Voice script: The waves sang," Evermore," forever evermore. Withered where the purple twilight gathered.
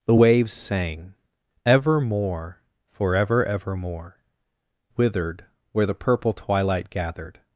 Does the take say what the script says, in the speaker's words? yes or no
yes